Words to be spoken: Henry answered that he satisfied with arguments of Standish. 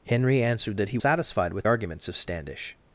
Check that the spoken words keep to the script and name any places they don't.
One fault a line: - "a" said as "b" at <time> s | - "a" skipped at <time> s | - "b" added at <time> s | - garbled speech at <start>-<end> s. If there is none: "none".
none